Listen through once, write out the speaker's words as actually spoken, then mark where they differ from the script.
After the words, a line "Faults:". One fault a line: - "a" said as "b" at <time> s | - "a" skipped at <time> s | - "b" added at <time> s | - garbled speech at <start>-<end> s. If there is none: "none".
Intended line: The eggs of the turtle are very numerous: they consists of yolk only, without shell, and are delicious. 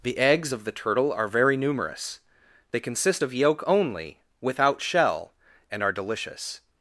The eggs of the turtle are very numerous: they consist of yolk only, without shell, and are delicious.
Faults:
- "consists" said as "consist" at 2.8 s